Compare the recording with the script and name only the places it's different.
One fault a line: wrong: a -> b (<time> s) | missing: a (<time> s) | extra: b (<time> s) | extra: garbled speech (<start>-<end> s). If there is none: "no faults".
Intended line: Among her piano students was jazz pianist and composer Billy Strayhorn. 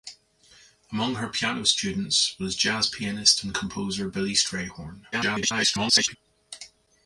extra: garbled speech (5.1-6.2 s)